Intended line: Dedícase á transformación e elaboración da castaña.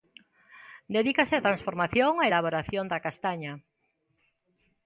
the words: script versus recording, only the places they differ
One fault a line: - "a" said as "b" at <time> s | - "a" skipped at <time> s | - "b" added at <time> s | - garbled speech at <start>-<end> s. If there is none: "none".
none